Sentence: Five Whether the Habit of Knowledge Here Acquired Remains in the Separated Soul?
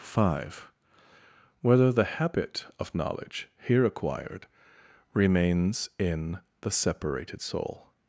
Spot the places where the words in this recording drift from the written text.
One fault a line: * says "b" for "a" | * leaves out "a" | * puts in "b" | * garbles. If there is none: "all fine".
all fine